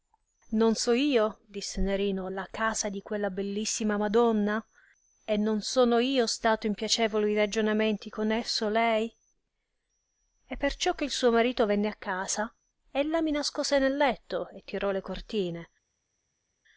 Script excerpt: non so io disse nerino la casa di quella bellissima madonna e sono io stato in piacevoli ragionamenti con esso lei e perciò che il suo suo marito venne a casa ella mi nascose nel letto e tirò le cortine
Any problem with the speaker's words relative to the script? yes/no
yes